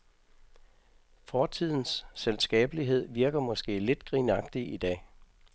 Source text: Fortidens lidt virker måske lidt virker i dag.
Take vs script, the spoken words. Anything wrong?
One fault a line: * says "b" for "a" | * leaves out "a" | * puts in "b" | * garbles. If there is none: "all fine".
* says "selskabelighed" for "lidt"
* says "grinagtig" for "virker"